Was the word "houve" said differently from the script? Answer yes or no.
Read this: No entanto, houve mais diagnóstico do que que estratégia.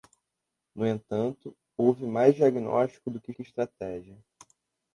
no